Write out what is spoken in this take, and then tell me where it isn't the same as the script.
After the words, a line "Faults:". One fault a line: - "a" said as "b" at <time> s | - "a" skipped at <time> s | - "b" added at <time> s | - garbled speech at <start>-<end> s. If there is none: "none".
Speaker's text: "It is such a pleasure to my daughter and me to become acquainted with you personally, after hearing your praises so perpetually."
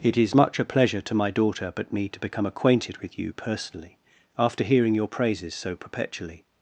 "It is much a pleasure to my daughter but me to become acquainted with you personally, after hearing your praises so perpetually."
Faults:
- "such" said as "much" at 0.3 s
- "and" said as "but" at 1.8 s